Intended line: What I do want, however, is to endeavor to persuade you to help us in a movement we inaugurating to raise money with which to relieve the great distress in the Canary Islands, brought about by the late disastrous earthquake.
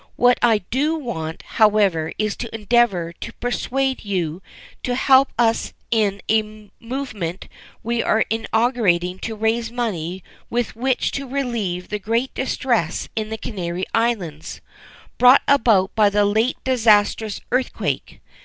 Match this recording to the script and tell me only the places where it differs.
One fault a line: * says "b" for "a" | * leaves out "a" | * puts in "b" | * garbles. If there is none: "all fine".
* puts in "are"